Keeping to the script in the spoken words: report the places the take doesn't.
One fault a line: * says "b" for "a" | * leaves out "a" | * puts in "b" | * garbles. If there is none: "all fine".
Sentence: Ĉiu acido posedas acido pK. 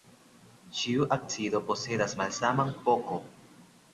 * says "malsaman" for "acido"